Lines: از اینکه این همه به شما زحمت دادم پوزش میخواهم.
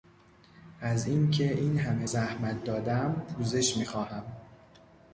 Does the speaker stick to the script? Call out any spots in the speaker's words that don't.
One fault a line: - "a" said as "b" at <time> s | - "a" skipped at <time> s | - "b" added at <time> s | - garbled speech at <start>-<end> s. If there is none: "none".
- "به شما" skipped at 2.1 s